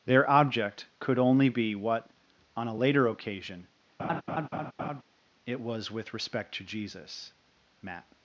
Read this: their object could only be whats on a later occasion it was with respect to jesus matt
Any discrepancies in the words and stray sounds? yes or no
yes